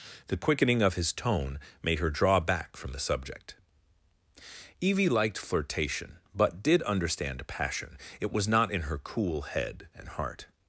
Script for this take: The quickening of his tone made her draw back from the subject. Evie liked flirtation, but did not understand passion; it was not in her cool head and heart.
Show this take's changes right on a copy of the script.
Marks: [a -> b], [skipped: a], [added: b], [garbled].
The quickening of his tone made her draw back from the subject. Evie liked flirtation, but did [skipped: not] understand passion; it was not in her cool head and heart.